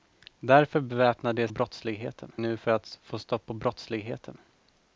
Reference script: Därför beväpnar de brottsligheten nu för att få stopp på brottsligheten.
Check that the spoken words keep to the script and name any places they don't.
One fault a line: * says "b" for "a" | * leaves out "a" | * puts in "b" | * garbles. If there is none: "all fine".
all fine